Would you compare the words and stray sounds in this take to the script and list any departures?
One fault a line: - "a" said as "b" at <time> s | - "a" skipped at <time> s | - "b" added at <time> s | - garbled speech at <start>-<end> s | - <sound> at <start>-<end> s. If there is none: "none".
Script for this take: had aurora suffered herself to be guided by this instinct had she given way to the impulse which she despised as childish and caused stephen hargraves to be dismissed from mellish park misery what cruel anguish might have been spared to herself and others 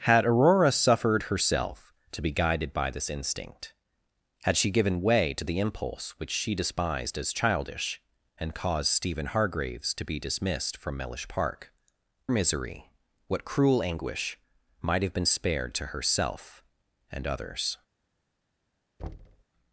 - thud at 19.0-19.4 s